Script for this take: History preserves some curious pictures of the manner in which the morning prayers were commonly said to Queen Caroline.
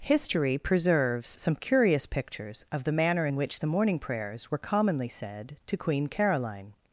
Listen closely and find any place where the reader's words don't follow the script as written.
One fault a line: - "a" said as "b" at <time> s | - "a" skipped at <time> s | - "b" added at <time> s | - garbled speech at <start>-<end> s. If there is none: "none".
none